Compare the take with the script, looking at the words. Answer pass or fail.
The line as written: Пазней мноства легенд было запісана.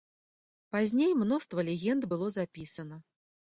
pass